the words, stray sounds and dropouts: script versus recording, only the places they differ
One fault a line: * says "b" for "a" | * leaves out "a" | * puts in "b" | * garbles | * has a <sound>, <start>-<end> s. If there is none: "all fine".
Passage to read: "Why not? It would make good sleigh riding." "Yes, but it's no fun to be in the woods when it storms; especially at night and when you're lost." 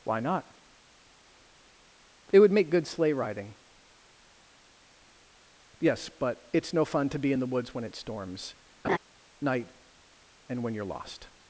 * leaves out "especially at"
* has a laugh, 8.8-9.0 s